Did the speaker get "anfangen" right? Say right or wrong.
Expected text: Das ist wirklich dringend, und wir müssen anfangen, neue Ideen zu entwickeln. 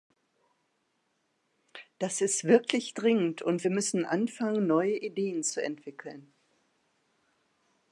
right